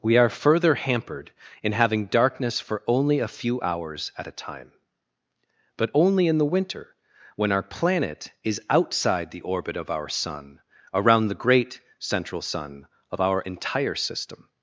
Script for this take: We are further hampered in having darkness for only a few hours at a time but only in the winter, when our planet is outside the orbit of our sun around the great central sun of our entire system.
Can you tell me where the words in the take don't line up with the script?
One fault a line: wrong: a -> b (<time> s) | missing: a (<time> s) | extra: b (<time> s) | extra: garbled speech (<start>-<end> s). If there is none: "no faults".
no faults